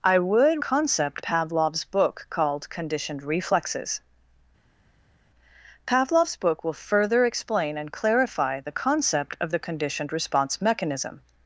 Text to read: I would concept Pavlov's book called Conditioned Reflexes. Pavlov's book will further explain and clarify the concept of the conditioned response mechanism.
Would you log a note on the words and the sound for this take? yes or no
no